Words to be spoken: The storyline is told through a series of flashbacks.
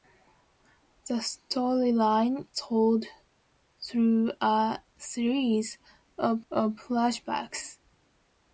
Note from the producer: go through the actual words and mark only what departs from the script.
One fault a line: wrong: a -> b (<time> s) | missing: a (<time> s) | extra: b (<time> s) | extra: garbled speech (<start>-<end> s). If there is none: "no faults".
missing: is (2.5 s)
extra: of (6.5 s)